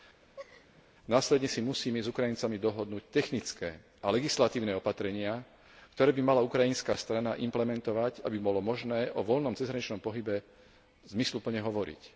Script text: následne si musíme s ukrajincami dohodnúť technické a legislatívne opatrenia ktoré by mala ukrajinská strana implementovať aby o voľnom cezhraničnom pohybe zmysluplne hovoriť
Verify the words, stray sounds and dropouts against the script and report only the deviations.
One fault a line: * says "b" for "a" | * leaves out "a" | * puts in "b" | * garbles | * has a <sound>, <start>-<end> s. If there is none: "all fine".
* has a laugh, 0.2-0.9 s
* puts in "bolo možné"